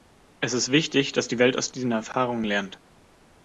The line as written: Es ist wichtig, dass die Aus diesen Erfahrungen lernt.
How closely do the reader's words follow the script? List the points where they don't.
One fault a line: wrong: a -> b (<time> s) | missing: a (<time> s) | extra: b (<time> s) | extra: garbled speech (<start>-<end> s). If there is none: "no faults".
extra: Welt (1.4 s)